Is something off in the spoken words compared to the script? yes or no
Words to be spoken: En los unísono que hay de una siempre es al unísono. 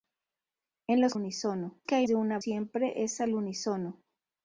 no